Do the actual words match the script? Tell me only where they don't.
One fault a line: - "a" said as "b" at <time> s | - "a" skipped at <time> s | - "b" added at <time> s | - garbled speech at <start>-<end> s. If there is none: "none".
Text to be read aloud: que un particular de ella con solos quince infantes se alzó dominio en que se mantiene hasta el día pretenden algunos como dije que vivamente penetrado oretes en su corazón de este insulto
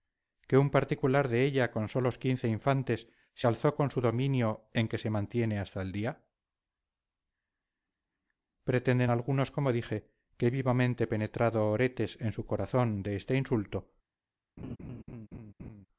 - "con su" added at 3.7 s